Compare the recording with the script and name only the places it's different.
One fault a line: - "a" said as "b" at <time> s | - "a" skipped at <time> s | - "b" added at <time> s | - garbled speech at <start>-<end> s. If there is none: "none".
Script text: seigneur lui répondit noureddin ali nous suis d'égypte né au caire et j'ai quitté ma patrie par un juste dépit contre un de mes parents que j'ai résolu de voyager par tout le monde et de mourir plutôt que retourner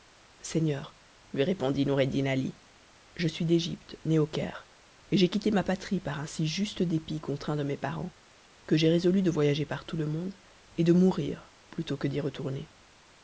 - "nous" said as "je" at 3.1 s
- "si" added at 6.2 s
- "d'y" added at 12.1 s